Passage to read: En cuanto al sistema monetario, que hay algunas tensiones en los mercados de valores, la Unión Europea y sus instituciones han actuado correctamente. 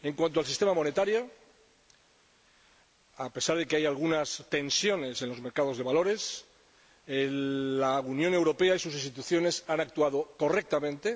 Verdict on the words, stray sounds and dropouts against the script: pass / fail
fail